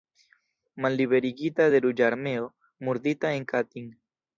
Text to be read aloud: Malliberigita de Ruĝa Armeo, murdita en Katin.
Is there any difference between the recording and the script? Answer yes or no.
no